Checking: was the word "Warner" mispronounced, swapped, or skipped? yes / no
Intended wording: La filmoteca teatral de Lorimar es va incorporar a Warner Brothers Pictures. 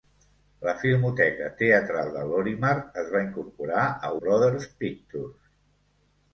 yes